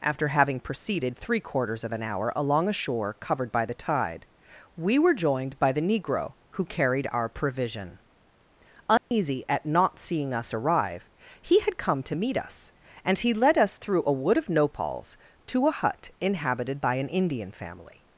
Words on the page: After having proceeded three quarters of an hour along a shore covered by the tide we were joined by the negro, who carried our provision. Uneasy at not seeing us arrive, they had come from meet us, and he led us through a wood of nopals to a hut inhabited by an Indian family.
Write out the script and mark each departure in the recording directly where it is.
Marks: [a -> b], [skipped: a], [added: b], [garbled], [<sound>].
After having proceeded three quarters of an hour along a shore covered by the tide we were joined by the negro, who carried our provision. Uneasy [dropout] at not seeing us arrive, [they -> he] had come [from -> to] meet us, and he led us through a wood of nopals to a hut inhabited by an Indian family.